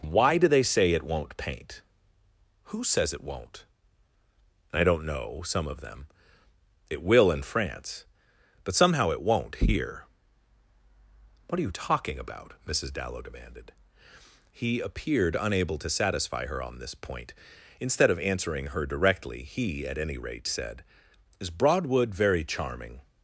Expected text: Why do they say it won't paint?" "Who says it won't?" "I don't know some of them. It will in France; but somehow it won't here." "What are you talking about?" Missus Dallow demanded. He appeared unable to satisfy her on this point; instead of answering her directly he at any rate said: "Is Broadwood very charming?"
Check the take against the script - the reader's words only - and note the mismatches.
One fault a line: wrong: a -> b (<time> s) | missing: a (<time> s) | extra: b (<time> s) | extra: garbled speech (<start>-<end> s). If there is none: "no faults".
no faults